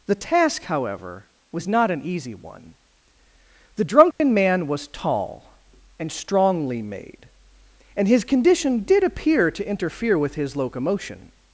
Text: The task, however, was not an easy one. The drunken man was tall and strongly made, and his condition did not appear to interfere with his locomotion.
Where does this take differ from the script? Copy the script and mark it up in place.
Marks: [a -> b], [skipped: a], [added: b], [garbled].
The task, however, was not an easy one. The drunken man was tall and strongly made, and his condition did [skipped: not] appear to interfere with his locomotion.